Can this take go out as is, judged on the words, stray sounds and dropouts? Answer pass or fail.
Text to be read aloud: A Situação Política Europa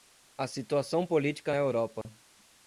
fail